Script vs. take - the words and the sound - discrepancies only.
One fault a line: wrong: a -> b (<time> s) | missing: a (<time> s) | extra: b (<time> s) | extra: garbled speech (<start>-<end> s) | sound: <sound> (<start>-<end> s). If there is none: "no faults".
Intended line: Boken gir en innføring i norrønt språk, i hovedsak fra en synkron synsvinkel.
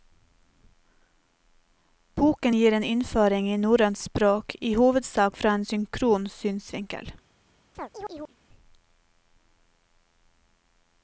sound: chirp (7.7-8.4 s)